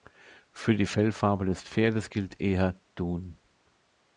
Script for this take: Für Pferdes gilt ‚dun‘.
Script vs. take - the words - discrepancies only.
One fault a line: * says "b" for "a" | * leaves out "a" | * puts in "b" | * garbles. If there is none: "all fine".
* puts in "die Fellfarbe des"
* puts in "eher"